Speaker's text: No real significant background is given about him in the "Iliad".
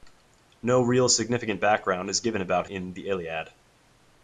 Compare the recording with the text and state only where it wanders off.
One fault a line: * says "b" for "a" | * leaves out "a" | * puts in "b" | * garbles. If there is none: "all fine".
* leaves out "him"